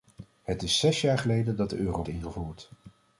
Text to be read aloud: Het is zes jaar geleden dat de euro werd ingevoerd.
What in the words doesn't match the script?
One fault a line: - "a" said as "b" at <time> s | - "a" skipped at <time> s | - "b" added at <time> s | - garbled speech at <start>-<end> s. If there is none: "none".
- "werd" skipped at 2.0 s